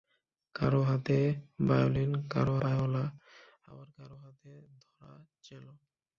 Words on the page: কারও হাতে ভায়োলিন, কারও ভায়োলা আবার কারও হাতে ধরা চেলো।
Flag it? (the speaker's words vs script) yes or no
no